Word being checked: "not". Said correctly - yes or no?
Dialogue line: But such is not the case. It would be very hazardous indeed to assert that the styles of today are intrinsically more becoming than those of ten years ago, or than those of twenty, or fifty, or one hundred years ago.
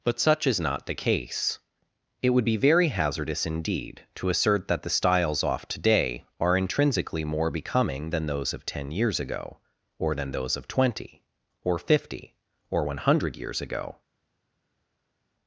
yes